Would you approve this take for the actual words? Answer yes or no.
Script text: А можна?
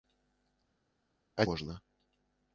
yes